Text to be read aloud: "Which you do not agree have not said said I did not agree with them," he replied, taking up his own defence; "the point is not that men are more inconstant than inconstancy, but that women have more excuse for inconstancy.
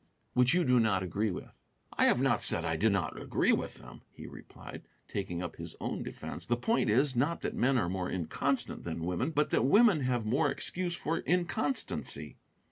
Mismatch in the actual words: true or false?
true